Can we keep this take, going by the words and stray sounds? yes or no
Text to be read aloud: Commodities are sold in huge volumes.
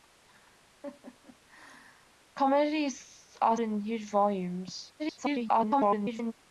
no